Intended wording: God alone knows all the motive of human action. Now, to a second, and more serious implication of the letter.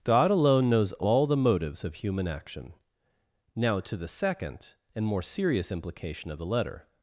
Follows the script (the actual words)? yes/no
no